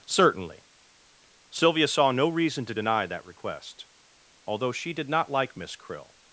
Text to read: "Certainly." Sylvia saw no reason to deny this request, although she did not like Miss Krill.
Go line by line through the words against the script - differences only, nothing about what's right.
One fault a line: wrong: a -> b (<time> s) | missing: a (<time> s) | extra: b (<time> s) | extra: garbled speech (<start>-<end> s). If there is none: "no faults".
wrong: this -> that (3.1 s)